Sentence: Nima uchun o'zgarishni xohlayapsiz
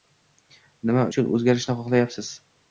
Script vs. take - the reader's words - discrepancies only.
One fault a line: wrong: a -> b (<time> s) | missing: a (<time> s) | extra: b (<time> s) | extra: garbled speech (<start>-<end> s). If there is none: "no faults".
no faults